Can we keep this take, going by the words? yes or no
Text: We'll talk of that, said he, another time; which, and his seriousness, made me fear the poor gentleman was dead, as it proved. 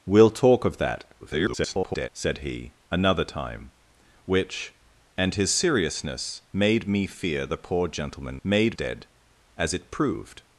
no